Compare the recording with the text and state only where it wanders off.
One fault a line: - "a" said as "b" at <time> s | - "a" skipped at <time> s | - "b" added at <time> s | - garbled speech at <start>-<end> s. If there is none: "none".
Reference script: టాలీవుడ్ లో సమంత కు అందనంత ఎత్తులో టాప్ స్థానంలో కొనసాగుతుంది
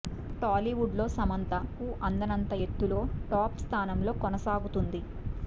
none